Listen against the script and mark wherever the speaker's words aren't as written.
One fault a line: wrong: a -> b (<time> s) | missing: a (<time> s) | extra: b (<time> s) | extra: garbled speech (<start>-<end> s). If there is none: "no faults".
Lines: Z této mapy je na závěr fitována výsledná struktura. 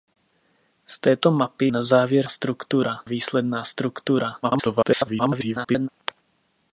missing: je (1.7 s)
wrong: fitována -> struktura (2.3 s)
extra: garbled speech (4.4-5.9 s)